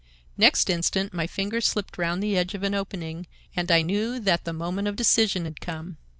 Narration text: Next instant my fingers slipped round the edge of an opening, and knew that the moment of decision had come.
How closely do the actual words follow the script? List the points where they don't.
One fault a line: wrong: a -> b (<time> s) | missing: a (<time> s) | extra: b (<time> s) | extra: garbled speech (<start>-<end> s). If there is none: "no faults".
extra: I (3.7 s)